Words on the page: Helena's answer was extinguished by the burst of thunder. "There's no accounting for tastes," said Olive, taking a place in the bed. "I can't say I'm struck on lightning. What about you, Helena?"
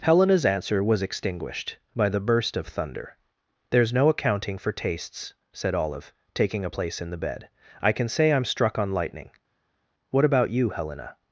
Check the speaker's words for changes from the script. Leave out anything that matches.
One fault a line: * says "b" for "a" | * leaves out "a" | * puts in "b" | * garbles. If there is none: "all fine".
* says "can" for "can't"